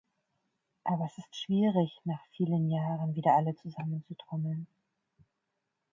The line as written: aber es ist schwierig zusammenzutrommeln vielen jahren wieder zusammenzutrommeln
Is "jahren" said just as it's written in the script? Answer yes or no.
yes